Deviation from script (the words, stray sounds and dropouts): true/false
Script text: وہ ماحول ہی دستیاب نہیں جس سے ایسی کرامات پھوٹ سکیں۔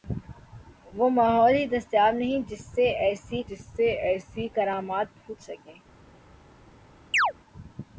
true